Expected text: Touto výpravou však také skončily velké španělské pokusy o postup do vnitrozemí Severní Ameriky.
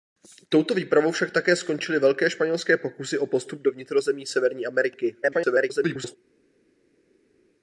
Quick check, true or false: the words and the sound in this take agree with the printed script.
false